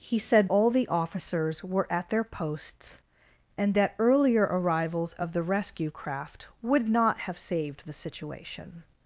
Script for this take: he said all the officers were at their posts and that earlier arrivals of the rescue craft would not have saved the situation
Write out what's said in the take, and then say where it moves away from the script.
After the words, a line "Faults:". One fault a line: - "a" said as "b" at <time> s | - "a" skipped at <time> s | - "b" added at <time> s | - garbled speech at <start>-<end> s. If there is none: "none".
he said all the officers were at their posts and that earlier arrivals of the rescue craft would not have saved the situation
Faults:
none